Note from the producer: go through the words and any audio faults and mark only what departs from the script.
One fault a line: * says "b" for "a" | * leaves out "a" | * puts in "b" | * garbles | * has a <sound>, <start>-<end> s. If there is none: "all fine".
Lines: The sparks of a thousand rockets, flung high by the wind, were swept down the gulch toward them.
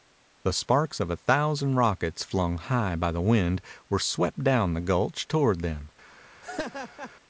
* has a laugh, 6.4-7.1 s